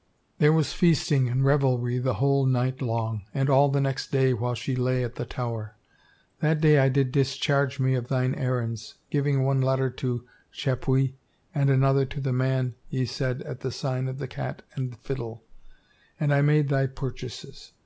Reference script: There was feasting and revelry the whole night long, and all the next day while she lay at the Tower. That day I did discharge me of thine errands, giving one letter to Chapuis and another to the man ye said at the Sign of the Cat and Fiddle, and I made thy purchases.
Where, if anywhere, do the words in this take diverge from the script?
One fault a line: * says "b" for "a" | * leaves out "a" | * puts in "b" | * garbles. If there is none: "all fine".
all fine